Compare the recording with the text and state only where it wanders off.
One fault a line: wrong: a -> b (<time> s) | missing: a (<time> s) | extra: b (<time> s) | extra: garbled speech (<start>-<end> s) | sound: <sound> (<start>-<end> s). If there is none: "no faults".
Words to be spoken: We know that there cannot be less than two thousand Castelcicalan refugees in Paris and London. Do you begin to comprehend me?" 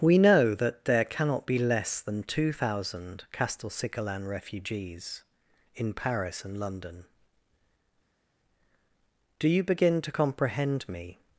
no faults